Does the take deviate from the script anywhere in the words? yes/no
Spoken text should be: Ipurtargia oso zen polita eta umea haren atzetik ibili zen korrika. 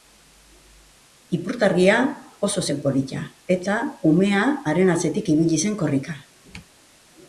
no